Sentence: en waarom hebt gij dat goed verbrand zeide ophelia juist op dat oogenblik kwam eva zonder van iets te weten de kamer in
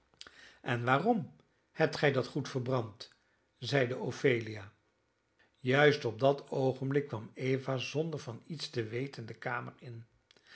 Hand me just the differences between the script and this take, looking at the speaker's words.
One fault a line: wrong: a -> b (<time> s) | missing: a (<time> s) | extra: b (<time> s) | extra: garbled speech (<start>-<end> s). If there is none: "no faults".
no faults